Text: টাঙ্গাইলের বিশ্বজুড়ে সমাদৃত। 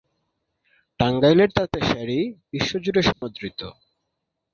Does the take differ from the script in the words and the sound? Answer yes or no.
yes